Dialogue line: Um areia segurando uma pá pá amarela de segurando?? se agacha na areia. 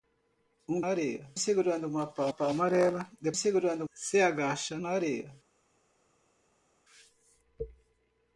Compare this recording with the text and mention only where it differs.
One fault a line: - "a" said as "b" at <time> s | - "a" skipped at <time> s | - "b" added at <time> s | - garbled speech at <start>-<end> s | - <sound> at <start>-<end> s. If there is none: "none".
none